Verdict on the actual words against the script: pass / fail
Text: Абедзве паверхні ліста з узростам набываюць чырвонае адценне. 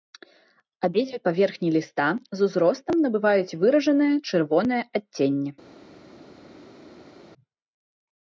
fail